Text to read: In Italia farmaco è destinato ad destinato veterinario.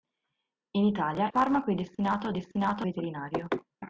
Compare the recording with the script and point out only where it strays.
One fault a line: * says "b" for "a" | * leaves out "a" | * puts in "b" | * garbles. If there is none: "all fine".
all fine